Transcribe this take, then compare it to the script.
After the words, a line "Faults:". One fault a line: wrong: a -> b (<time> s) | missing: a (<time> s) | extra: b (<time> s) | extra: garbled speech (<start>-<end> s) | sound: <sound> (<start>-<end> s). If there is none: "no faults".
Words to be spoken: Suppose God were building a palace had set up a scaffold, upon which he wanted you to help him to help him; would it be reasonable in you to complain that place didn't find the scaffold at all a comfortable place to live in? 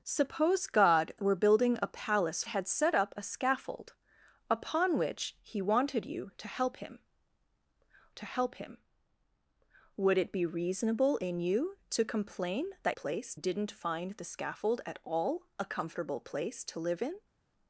Suppose God were building a palace had set up a scaffold, upon which he wanted you to help him to help him; would it be reasonable in you to complain that place didn't find the scaffold at all a comfortable place to live in?
Faults:
no faults